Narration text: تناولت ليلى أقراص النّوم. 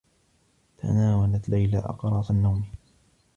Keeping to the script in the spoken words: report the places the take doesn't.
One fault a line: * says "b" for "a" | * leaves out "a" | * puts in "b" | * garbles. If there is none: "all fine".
all fine